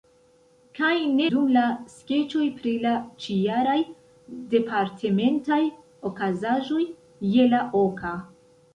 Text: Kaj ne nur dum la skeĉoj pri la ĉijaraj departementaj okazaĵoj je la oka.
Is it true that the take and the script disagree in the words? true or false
true